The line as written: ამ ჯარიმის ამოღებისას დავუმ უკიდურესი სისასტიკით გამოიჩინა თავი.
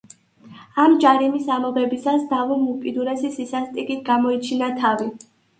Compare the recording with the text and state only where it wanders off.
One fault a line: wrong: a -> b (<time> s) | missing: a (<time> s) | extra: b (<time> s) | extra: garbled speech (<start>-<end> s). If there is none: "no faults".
no faults